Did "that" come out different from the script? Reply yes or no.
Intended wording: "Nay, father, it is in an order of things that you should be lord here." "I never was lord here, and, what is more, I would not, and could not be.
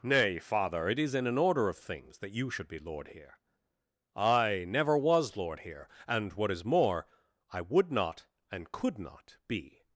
no